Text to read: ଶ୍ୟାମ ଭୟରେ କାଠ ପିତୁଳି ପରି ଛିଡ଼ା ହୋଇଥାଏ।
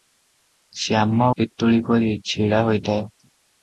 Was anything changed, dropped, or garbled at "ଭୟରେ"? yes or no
yes